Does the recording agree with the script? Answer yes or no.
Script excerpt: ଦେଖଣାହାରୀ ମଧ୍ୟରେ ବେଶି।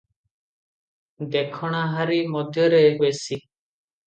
yes